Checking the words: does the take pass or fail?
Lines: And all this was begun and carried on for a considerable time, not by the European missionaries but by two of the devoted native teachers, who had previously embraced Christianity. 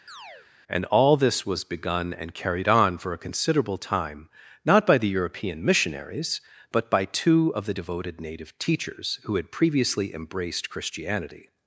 pass